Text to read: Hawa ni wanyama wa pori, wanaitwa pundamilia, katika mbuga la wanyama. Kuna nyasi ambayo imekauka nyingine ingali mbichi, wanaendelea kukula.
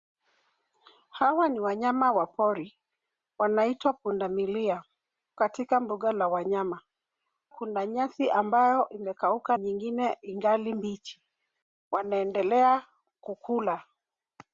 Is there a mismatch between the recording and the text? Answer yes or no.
no